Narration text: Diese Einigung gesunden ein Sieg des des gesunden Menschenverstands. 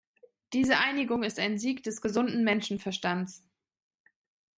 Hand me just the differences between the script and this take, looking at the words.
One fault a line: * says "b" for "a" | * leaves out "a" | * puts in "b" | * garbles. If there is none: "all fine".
* says "ist" for "gesunden"
* leaves out "des"